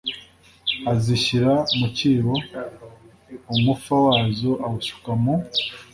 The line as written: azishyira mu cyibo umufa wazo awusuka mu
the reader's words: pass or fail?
pass